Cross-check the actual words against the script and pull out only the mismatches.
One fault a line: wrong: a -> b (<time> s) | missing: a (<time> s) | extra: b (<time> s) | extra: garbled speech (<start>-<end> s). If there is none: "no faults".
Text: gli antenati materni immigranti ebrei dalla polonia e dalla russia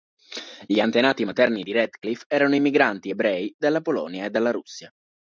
extra: di radcliffe erano (1.6 s)